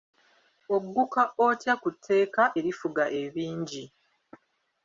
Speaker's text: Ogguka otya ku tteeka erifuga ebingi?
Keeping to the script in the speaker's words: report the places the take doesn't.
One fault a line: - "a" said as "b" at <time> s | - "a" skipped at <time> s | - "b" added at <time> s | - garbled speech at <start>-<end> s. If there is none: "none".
none